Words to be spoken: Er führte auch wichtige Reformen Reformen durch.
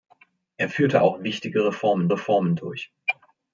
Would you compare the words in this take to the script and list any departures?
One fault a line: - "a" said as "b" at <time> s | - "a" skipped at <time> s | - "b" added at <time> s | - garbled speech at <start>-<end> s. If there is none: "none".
none